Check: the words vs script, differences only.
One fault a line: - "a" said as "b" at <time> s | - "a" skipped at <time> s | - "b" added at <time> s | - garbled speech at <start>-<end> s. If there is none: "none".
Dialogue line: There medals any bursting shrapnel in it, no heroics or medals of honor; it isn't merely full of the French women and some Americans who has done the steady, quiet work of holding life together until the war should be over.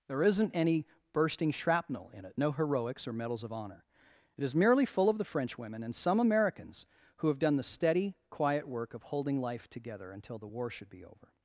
- "medals" said as "isn't" at 0.2 s
- "isn't" said as "is" at 4.4 s
- "has" said as "have" at 7.3 s